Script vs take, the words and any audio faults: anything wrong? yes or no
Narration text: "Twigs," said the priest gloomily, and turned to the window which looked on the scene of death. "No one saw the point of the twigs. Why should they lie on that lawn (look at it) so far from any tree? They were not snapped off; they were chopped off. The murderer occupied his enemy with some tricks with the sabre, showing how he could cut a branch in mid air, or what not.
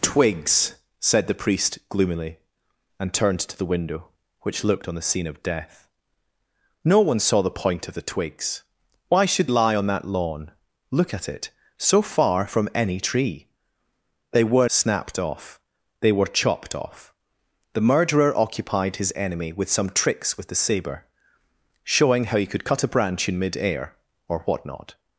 yes